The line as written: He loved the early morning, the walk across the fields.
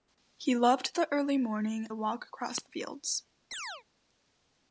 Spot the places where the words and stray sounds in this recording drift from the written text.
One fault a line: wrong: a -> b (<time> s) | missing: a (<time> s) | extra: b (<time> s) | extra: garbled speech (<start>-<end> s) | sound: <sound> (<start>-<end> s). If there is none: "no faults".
sound: chirp (3.5-3.8 s)